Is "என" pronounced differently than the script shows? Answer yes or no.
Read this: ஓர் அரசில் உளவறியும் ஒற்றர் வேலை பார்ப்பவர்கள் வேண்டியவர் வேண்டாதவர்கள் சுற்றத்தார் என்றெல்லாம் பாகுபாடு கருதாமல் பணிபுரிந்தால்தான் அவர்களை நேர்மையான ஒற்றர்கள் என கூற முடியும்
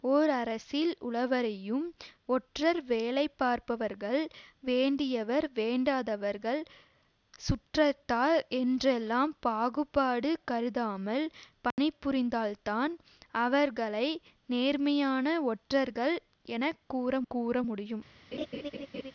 no